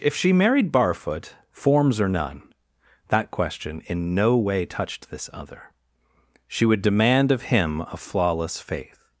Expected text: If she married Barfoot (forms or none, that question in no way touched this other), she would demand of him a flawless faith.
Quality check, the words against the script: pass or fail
pass